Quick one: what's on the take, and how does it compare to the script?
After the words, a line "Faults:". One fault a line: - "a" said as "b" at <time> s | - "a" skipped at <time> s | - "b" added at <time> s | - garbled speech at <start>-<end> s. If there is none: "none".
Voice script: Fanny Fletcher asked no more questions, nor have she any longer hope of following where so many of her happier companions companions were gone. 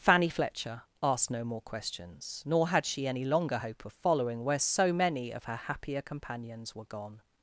Fanny Fletcher asked no more questions, nor had she any longer hope of following where so many of her happier companions were gone.
Faults:
- "have" said as "had" at 2.7 s
- "companions" skipped at 6.7 s